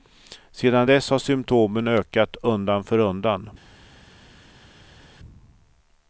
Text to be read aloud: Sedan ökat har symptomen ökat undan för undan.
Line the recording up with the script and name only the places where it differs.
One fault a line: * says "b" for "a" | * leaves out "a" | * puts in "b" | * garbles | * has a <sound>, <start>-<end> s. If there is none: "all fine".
* says "dess" for "ökat"